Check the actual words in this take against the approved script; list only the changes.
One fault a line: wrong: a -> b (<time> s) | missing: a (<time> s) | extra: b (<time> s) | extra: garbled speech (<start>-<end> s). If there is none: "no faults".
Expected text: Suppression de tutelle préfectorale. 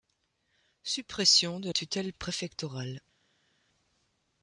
no faults